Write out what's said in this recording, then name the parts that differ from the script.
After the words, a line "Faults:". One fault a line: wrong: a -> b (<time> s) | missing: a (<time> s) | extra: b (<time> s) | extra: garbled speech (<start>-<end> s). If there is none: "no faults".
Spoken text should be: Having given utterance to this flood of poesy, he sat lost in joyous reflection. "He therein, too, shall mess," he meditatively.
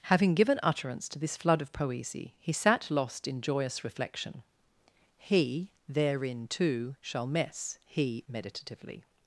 Having given utterance to this flood of poesy, he sat lost in joyous reflection. "He therein, too, shall mess," he meditatively.
Faults:
no faults